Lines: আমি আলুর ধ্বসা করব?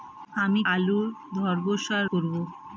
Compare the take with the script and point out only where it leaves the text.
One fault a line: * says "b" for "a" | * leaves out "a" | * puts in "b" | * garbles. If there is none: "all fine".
all fine